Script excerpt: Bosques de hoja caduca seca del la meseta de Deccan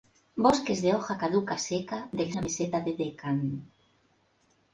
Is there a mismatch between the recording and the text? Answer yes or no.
no